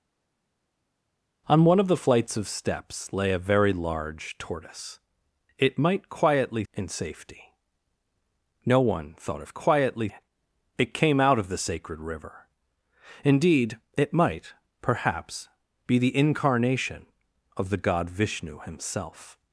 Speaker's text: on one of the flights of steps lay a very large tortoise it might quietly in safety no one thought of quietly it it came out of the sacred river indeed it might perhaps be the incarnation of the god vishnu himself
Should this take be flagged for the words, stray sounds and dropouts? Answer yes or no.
no